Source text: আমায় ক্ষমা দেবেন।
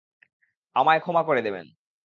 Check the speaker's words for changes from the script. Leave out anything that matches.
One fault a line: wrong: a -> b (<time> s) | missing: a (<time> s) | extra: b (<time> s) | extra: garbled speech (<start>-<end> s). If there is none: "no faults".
extra: করে (1.2 s)